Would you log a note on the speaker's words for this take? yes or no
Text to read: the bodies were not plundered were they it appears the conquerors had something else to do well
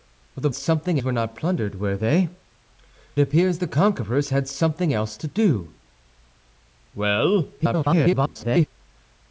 yes